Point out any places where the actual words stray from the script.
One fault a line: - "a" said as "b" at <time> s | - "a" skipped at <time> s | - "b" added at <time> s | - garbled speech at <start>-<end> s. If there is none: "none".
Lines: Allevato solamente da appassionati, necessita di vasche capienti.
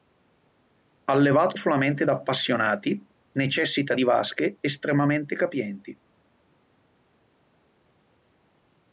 - "estremamente" added at 4.6 s